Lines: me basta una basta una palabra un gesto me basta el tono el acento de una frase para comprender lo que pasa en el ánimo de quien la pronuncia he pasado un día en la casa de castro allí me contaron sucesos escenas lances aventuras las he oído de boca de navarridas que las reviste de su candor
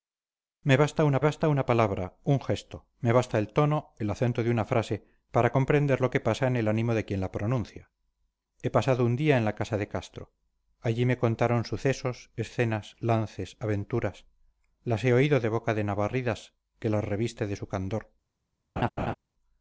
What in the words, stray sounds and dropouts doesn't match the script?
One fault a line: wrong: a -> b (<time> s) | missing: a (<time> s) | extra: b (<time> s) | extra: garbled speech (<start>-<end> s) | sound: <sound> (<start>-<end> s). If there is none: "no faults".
sound: laugh (18.8-19.1 s)